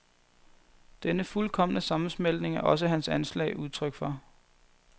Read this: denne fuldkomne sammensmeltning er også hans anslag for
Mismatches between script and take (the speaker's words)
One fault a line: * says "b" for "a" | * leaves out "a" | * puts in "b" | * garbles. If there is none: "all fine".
* puts in "udtryk"